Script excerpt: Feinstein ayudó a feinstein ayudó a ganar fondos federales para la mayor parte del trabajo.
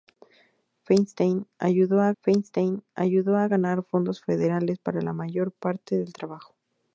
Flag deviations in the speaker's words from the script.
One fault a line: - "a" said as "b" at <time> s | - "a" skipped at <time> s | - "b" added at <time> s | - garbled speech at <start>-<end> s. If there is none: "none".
none